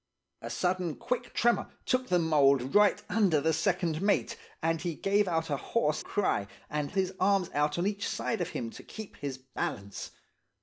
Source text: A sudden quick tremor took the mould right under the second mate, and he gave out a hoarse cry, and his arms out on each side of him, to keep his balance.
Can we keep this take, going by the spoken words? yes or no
yes